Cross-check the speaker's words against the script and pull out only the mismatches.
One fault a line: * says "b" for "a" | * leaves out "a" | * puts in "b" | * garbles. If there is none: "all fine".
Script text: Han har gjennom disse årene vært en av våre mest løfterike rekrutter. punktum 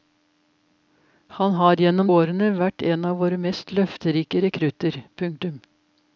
* leaves out "disse"